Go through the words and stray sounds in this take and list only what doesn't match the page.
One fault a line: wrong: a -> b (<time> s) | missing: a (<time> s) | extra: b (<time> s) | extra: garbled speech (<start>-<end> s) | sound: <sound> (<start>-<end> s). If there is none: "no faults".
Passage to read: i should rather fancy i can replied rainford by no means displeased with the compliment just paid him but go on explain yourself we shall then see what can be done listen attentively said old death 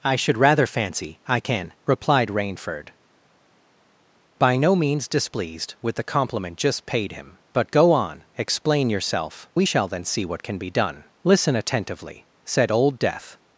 no faults